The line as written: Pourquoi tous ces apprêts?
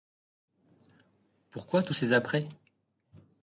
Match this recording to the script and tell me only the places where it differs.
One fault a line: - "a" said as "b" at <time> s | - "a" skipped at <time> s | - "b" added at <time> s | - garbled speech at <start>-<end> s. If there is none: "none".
none